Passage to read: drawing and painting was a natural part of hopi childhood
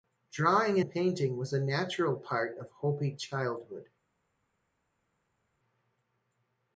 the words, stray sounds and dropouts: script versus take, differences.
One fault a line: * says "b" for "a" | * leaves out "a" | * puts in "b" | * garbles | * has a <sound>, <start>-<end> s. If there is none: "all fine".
all fine